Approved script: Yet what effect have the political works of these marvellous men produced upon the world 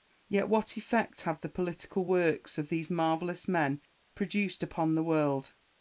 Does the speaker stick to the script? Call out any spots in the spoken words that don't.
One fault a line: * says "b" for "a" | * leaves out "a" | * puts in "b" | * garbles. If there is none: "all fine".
all fine